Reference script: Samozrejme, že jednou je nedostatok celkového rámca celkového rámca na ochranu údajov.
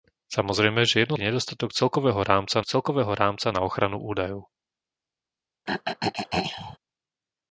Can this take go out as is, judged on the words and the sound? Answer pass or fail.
fail